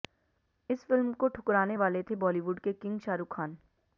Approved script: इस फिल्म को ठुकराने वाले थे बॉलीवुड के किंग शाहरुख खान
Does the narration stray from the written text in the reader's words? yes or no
no